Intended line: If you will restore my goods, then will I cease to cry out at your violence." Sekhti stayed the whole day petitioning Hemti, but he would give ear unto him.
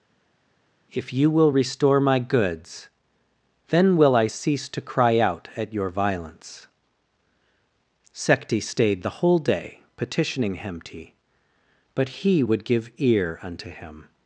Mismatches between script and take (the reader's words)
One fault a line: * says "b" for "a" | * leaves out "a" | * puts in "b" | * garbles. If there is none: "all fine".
all fine